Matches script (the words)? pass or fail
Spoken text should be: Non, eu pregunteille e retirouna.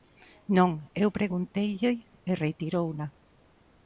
pass